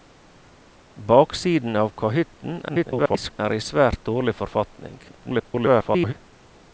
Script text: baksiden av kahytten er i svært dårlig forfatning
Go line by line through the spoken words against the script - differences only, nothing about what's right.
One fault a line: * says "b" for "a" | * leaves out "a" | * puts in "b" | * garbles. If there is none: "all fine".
* garbles
* garbles